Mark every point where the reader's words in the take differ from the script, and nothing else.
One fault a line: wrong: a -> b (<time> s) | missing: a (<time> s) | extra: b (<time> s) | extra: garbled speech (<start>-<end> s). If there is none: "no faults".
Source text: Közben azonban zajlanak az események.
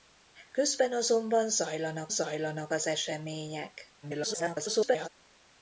extra: zajlanak (2.1 s)
extra: garbled speech (4.0-5.1 s)